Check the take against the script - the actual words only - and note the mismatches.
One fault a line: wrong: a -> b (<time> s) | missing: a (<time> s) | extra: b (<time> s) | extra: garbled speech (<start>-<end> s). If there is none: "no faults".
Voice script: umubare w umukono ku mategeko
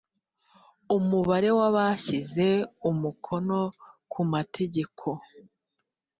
extra: abashyize (1.7 s)